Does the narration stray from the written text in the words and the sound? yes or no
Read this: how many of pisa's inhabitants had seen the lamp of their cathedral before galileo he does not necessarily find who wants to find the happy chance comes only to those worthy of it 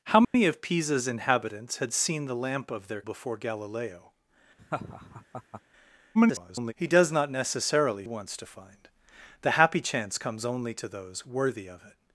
yes